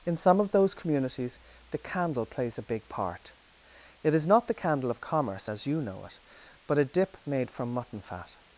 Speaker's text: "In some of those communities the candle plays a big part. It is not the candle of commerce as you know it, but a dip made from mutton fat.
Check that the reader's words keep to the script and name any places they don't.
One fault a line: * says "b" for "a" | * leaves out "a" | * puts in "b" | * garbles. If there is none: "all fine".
all fine